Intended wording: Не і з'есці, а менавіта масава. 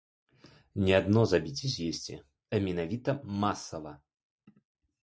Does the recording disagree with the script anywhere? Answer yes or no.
yes